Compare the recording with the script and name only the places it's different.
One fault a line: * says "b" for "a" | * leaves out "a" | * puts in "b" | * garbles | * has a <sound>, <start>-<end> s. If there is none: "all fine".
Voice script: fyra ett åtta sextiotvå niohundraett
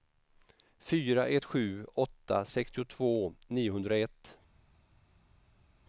* puts in "sju"